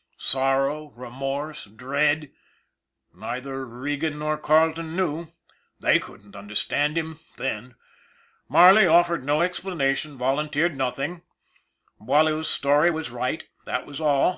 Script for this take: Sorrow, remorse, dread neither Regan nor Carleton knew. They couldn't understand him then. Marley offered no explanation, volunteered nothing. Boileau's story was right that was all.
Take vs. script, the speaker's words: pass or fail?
pass